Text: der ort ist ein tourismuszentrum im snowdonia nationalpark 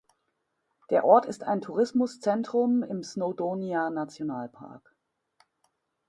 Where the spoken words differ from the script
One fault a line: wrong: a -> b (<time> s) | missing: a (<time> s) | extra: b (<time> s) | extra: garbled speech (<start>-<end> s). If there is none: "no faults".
no faults